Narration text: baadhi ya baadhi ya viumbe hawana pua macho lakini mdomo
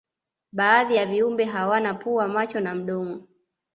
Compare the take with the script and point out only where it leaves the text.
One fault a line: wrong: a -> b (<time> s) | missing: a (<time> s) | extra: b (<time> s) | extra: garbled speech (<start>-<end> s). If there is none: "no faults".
missing: baadhi ya (1.1 s)
wrong: lakini -> na (2.6 s)